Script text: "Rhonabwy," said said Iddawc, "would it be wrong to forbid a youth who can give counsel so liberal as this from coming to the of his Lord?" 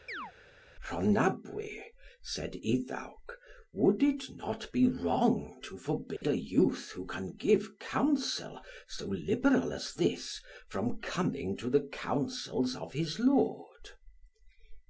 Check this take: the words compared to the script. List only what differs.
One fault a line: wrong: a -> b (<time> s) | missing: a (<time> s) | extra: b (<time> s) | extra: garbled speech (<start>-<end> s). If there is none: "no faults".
missing: said (2.5 s)
extra: not (4.4 s)
extra: councils (11.9 s)